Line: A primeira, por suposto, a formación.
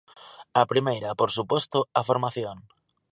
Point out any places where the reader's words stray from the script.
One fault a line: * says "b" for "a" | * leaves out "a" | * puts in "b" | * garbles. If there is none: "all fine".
all fine